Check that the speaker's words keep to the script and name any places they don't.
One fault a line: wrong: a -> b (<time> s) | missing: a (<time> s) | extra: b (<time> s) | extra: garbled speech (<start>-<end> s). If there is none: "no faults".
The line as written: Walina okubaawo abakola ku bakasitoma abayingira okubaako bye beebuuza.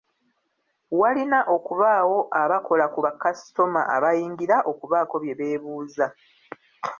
no faults